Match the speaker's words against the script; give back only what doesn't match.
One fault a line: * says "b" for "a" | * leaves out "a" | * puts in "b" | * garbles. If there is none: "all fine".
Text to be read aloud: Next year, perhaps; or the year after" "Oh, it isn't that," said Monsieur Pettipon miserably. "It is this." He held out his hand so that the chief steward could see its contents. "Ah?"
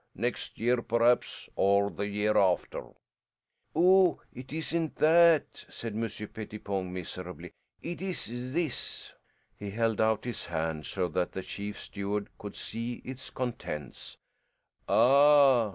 all fine